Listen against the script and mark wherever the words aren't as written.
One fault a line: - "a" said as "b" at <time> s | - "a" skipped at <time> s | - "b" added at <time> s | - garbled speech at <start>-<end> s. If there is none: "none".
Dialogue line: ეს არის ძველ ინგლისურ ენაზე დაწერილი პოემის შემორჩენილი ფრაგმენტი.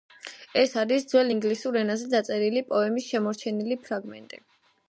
none